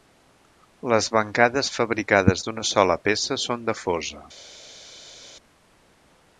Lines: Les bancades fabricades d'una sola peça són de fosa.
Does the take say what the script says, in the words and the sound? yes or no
yes